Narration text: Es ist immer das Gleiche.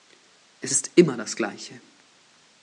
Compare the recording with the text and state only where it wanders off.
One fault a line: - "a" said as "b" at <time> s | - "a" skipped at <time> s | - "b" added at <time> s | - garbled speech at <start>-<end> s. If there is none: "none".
none